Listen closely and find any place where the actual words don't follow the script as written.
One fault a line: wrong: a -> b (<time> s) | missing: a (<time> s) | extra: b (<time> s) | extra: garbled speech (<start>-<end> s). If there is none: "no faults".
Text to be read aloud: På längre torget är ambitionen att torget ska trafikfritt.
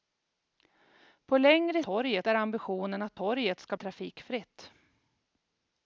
no faults